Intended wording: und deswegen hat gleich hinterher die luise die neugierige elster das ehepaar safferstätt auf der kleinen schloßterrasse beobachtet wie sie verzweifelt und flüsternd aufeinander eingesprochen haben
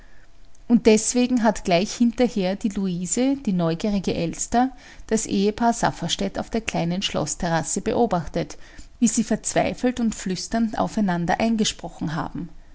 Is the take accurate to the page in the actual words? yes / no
yes